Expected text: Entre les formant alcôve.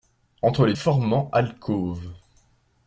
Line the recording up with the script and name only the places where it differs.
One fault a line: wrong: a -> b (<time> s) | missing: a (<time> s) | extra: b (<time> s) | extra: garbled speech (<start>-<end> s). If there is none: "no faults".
no faults